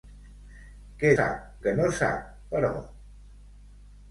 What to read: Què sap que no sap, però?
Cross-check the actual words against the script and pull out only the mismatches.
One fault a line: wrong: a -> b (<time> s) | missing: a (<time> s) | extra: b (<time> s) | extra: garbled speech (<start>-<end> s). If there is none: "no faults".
no faults